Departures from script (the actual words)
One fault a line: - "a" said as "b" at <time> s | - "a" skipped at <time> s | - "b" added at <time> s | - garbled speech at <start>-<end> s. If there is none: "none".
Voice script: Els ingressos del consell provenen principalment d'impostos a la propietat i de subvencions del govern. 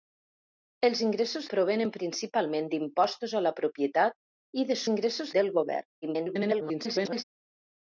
- "del consell" skipped at 1.5 s
- "subvencions" said as "ingressos" at 4.9 s
- garbled speech at 6.0-7.2 s